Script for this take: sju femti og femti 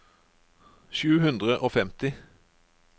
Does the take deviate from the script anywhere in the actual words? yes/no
yes